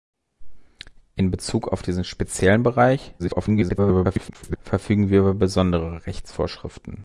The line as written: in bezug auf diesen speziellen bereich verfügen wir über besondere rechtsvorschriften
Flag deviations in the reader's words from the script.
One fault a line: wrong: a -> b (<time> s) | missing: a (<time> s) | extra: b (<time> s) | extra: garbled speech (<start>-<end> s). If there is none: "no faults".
extra: garbled speech (3.2-4.6 s)